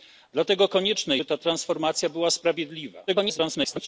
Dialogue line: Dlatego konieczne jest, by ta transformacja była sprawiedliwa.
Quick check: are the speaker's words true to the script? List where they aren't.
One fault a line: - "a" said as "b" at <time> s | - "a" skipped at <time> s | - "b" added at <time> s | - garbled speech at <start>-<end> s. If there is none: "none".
- "jest" skipped at 1.2 s
- garbled speech at 3.1-3.9 s